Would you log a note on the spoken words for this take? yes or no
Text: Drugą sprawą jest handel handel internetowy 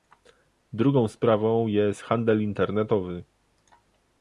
yes